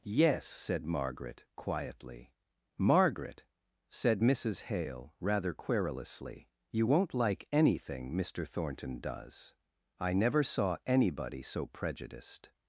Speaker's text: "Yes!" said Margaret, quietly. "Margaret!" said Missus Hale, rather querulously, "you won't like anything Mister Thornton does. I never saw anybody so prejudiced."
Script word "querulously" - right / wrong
right